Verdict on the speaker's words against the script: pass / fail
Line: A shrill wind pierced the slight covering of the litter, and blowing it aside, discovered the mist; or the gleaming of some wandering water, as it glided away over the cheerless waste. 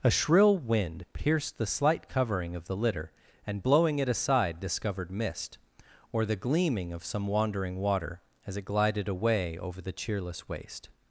fail